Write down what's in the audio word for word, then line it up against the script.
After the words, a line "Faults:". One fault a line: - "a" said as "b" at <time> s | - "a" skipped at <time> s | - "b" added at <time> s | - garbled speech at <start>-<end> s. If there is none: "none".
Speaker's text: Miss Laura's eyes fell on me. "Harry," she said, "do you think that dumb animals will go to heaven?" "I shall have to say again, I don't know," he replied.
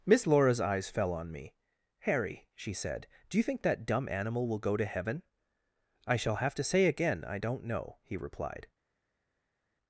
Miss Laura's eyes fell on me. "Harry," she said, "do you think that dumb animal will go to heaven?" "I shall have to say again, I don't know," he replied.
Faults:
- "animals" said as "animal" at 4.1 s